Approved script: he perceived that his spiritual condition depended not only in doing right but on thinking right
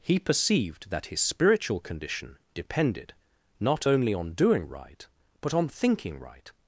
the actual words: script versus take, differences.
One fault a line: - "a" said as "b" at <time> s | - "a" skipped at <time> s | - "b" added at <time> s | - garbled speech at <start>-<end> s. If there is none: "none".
- "in" said as "on" at 4.1 s